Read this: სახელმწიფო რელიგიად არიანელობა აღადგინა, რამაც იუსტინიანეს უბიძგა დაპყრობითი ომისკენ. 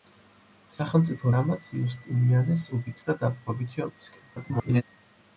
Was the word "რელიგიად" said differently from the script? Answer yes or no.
yes